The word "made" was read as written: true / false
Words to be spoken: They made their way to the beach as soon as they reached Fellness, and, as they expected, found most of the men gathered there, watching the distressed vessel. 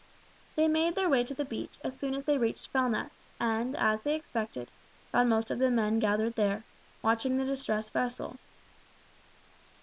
true